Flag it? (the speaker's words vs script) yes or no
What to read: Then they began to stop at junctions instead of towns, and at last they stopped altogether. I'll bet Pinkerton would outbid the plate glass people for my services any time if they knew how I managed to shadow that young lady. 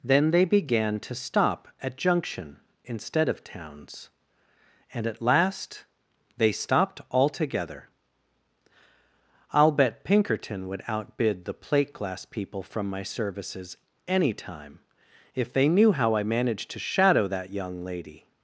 yes